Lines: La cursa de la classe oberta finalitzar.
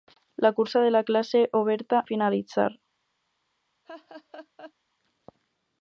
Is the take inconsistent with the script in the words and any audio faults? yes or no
yes